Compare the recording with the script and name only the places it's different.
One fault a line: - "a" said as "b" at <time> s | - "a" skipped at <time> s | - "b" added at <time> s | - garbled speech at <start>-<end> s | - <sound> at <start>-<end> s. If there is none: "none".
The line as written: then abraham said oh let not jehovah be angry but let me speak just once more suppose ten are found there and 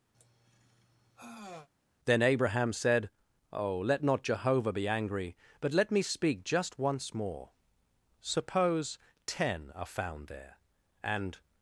- sigh at 0.1-1.7 s